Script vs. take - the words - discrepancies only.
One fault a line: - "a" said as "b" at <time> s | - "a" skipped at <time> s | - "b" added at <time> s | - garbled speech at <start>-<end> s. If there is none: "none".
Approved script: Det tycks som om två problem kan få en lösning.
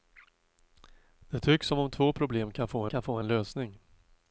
- "kan få" added at 2.9 s